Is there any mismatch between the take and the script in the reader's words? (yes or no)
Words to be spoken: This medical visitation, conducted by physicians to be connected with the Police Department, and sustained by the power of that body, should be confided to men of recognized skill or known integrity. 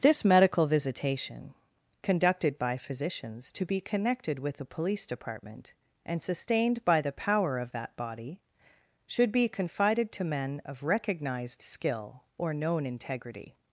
no